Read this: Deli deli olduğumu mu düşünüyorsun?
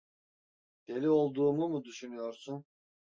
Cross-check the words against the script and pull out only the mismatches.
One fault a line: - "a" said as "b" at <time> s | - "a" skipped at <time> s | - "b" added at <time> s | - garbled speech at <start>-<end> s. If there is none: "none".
- "deli" skipped at 1.1 s